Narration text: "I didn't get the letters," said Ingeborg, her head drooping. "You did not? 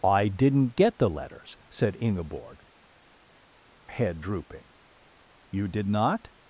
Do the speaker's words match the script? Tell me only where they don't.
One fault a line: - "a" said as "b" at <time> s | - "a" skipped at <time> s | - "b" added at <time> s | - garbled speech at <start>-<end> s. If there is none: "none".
- "her" skipped at 2.6 s